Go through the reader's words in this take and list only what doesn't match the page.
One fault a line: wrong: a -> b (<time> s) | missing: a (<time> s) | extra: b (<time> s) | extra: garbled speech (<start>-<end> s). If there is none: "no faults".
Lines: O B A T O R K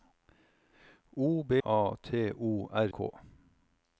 no faults